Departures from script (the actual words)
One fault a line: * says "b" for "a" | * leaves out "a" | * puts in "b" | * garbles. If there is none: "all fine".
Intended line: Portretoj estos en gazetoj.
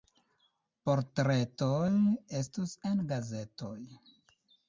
all fine